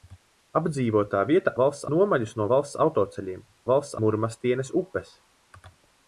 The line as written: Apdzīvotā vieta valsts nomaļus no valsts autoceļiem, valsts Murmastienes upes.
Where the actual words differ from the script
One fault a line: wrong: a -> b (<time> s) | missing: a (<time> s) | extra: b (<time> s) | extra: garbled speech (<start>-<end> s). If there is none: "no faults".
no faults